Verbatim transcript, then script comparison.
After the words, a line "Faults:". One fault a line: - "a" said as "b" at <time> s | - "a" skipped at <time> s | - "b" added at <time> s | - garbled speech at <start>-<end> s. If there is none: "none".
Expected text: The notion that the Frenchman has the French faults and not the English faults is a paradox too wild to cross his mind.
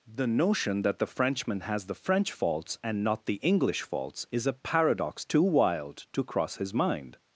The notion that the Frenchman has the French faults and not the English faults is a paradox too wild to cross his mind.
Faults:
none